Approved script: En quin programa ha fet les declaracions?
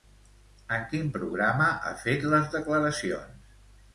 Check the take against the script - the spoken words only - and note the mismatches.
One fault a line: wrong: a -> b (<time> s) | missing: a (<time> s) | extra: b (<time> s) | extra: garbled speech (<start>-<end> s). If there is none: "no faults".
no faults